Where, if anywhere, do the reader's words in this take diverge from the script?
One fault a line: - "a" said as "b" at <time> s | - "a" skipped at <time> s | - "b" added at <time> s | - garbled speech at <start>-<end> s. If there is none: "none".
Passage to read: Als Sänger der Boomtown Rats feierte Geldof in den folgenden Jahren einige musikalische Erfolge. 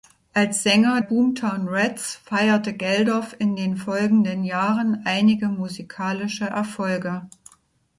- "der" skipped at 1.0 s